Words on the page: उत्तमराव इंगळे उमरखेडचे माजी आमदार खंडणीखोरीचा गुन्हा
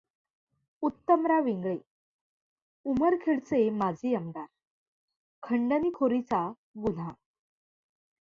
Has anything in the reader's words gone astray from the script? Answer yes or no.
no